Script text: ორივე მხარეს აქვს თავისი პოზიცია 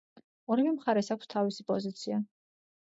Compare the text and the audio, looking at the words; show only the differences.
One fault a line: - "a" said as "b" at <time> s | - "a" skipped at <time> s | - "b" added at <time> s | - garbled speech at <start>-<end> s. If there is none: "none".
none